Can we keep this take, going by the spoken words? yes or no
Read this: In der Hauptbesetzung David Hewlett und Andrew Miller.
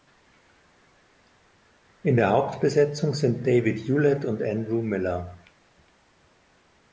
no